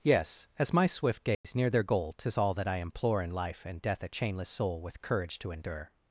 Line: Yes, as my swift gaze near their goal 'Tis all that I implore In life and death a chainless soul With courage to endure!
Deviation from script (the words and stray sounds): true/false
true